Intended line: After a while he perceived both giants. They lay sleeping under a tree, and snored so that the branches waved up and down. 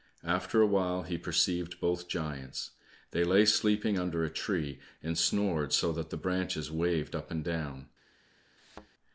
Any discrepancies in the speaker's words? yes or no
no